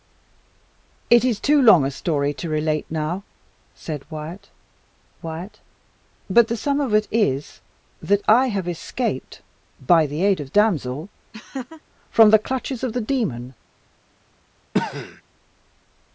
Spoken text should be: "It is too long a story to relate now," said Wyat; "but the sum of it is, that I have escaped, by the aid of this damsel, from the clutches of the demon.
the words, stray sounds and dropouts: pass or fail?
fail